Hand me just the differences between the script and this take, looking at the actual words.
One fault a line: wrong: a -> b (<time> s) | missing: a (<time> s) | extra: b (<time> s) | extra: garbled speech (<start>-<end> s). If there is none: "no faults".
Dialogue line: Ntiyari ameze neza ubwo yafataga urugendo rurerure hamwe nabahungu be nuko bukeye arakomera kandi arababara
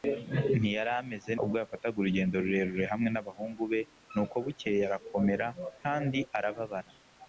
missing: neza (1.3 s)